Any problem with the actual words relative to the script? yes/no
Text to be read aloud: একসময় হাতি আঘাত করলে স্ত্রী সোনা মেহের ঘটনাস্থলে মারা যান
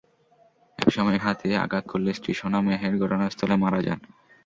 no